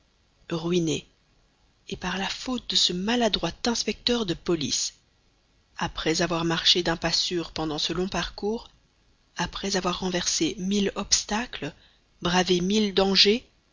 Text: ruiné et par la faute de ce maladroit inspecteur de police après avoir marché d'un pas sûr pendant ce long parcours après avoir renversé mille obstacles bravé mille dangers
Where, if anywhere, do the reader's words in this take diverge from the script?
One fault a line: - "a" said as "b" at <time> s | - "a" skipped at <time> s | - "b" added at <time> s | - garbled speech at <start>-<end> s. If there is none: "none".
none